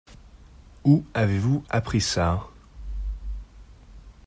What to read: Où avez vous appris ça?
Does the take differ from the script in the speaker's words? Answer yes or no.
no